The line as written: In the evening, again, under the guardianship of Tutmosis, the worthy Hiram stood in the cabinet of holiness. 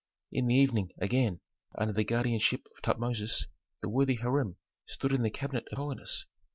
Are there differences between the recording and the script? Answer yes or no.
no